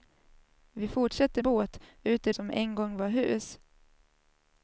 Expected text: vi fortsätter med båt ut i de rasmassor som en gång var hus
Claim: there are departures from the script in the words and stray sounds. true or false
true